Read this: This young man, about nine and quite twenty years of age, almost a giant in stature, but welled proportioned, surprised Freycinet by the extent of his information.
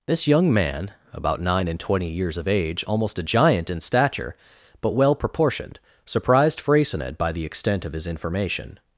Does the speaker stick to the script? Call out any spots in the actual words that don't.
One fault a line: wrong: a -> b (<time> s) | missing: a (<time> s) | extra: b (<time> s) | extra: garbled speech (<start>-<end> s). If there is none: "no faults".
missing: quite (1.8 s)
wrong: welled -> well (4.9 s)